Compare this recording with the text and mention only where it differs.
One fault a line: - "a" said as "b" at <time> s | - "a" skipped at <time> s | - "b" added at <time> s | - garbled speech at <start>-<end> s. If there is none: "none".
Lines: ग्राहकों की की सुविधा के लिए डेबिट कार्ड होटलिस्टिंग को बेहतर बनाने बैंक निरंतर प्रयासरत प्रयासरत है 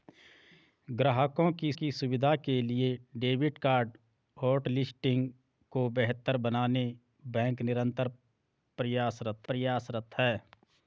none